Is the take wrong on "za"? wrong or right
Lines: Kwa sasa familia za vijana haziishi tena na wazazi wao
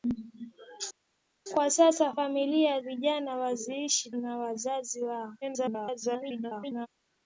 wrong